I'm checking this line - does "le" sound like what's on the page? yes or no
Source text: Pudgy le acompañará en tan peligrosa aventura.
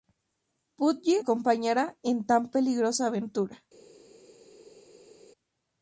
no